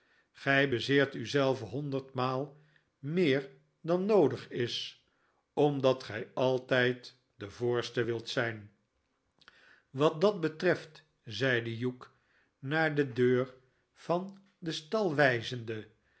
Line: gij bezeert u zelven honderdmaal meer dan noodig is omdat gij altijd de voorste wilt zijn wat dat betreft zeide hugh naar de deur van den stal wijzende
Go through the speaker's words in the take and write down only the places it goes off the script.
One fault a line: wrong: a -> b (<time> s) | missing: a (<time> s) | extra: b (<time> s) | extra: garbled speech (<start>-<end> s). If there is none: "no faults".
no faults